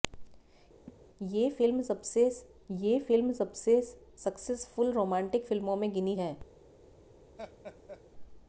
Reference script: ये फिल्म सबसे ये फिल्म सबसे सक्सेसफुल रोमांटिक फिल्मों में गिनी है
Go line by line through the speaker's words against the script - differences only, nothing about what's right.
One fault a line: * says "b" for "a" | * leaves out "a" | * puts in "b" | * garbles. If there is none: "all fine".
all fine